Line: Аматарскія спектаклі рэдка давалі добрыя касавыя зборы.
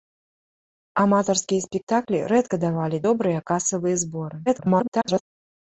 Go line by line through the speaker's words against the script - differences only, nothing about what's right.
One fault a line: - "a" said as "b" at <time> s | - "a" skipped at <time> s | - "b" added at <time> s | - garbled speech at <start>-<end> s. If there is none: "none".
- garbled speech at 4.5-5.2 s